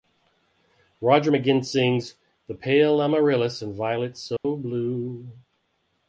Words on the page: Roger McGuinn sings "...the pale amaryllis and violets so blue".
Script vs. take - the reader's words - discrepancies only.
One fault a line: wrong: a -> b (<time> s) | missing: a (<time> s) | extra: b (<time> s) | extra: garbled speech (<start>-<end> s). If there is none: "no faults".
no faults